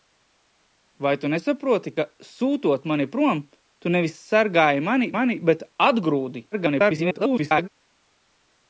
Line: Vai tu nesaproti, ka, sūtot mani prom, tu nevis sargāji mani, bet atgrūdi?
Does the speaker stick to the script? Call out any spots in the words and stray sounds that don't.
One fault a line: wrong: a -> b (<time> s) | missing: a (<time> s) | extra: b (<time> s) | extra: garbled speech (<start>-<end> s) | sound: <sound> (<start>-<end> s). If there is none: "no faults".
extra: mani (5.2 s)
extra: garbled speech (6.5-7.7 s)